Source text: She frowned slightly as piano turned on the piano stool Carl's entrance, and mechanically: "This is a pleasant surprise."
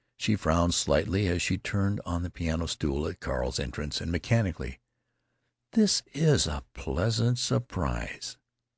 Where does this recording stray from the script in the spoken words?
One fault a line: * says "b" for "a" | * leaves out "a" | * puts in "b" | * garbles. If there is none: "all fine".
* says "she" for "piano"
* puts in "at"